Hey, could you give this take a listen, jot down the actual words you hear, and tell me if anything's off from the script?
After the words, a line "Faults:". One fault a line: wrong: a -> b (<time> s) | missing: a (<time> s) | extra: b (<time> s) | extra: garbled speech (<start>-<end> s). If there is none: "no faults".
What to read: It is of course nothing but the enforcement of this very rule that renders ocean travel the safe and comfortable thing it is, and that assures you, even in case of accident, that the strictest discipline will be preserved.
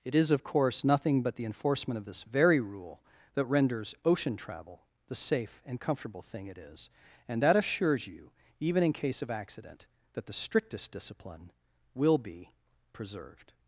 It is of course nothing but the enforcement of this very rule that renders ocean travel the safe and comfortable thing it is, and that assures you, even in case of accident, that the strictest discipline will be preserved.
Faults:
no faults